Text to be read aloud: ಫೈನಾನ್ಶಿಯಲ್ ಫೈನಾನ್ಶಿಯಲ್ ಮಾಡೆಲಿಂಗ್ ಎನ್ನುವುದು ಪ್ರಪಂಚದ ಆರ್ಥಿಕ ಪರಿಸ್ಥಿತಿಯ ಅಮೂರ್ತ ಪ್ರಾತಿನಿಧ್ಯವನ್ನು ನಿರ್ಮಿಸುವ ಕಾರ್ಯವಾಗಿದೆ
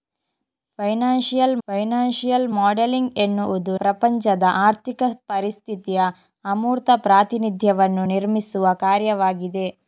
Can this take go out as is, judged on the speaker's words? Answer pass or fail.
pass